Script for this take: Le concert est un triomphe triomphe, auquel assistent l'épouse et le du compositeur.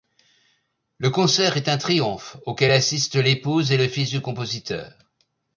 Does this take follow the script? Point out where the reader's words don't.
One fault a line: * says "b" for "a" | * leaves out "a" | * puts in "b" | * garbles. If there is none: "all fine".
* leaves out "triomphe"
* puts in "fils"